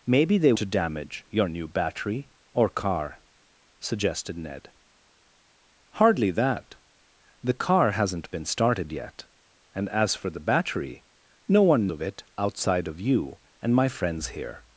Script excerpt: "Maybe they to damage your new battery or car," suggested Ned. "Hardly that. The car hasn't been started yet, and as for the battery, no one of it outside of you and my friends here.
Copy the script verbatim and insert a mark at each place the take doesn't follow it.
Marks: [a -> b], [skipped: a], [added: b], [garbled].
"Maybe they to damage your new battery or car," suggested Ned. "Hardly that. The car hasn't been started yet, and as for the battery, no one of it outside of you and my friends here.